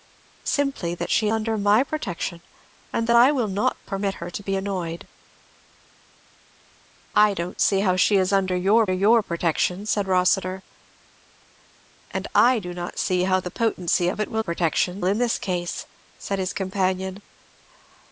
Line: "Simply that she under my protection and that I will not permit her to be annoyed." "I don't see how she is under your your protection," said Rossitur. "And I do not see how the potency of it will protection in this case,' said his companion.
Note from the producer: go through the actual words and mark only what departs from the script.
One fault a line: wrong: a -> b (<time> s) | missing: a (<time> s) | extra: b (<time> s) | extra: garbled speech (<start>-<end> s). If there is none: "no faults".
no faults